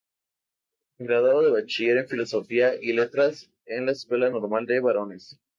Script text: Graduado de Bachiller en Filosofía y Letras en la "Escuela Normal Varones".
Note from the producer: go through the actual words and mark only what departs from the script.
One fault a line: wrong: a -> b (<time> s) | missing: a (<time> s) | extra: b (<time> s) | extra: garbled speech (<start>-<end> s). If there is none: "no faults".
extra: de (4.7 s)